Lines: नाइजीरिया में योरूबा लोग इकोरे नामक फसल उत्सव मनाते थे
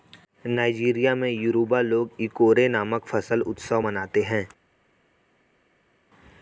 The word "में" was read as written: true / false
true